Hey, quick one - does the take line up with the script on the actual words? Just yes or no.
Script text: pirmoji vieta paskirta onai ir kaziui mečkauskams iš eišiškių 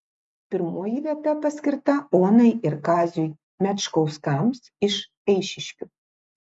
yes